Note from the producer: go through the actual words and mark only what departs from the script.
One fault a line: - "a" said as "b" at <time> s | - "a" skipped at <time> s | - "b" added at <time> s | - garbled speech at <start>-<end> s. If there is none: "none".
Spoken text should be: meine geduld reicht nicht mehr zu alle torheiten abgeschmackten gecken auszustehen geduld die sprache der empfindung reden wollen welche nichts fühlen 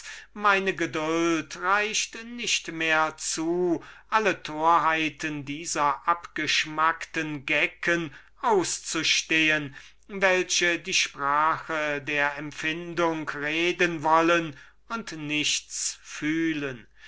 - "dieser" added at 5.5 s
- "geduld" said as "welche" at 10.1 s
- "welche" said as "und" at 14.9 s